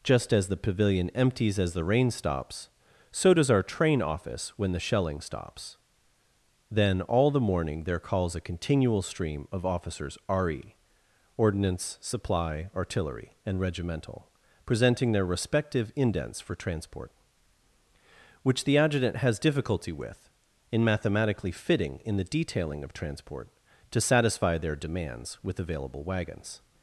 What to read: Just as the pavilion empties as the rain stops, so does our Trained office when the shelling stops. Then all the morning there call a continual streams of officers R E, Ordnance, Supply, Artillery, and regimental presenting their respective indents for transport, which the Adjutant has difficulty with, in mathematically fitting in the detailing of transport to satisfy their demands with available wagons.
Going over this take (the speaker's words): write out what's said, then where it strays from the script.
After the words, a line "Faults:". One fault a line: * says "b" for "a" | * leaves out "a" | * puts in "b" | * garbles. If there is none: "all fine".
Just as the pavilion empties as the rain stops, so does our Train office when the shelling stops. Then all the morning there calls a continual stream of officers R E, Ordnance, Supply, Artillery, and regimental presenting their respective indents for transport, which the Adjutant has difficulty with, in mathematically fitting in the detailing of transport to satisfy their demands with available wagons.
Faults:
* says "Train" for "Trained"
* says "calls" for "call"
* says "stream" for "streams"